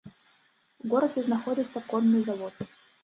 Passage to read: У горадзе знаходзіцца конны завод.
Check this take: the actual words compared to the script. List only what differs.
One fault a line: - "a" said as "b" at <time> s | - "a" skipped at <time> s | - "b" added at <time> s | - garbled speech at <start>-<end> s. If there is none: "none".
none